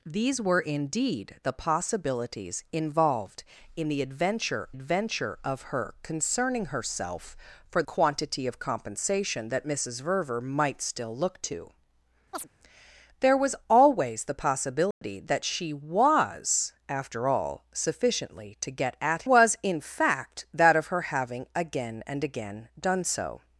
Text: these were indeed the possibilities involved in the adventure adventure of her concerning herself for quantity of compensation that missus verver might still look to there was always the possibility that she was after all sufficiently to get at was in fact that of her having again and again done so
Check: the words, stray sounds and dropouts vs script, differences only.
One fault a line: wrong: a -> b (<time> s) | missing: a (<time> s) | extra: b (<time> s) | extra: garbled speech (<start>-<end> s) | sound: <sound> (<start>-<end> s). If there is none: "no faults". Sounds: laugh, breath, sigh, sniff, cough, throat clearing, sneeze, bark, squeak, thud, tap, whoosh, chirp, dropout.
sound: chirp (12.3-12.5 s)
sound: dropout (14.9-15.0 s)